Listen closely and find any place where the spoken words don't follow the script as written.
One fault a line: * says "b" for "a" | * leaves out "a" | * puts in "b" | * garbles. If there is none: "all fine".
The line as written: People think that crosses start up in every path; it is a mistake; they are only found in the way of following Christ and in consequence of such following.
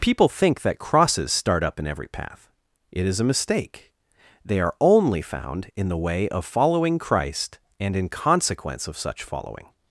all fine